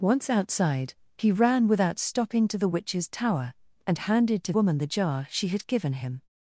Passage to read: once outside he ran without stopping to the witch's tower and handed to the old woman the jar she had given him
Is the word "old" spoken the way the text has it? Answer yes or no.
no